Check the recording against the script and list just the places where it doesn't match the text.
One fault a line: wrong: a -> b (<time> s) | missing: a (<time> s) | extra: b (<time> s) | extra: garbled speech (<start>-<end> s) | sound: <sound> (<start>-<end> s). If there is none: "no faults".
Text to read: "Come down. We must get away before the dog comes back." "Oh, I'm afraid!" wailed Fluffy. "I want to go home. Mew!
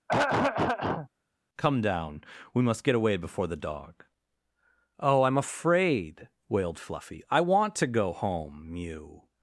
sound: throat clearing (0.1-1.1 s)
missing: comes back (4.1 s)